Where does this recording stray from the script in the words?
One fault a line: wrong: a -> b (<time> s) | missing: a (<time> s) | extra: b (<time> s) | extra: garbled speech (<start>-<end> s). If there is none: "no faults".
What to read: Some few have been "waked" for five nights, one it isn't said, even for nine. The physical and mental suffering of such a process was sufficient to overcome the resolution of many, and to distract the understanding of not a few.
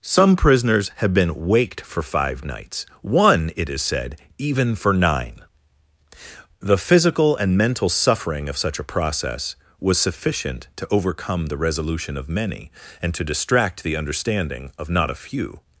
wrong: few -> prisoners (0.3 s)
wrong: isn't -> is (3.7 s)